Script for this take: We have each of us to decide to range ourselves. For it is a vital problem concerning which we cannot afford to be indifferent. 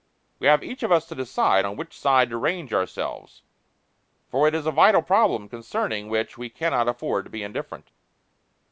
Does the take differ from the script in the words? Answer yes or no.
yes